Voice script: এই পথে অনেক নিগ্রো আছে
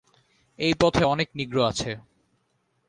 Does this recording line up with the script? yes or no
yes